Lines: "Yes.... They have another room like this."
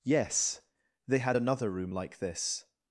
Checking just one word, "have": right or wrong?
wrong